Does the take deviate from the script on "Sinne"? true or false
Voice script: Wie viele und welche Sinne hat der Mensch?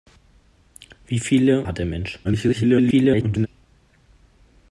true